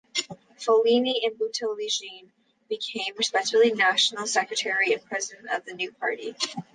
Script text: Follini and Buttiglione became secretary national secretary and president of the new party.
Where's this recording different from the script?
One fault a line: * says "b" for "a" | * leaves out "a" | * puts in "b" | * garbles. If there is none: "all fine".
* says "respectively" for "secretary"